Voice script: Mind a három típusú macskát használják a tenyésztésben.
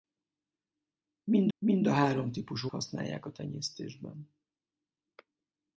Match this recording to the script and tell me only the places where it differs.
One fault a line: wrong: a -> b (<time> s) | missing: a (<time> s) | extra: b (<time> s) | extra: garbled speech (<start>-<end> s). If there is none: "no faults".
extra: mind (1.6 s)
missing: macskát (2.7 s)